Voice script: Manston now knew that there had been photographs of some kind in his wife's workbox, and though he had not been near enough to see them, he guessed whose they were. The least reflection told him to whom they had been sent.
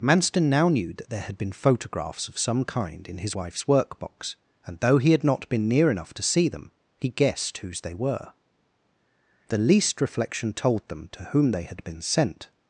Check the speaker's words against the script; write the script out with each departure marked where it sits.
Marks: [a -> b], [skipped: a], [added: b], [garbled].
Manston now knew that there had been photographs of some kind in his wife's workbox, and though he had not been near enough to see them, he guessed whose they were. The least reflection told [him -> them] to whom they had been sent.